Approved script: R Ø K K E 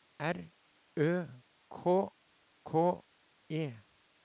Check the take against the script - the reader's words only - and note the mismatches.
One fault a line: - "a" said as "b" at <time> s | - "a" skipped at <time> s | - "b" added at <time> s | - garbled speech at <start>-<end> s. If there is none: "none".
none